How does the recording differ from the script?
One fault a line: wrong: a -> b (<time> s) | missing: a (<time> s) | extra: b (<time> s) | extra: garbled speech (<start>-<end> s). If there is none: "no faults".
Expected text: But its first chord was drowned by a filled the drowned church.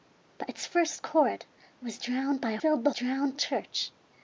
no faults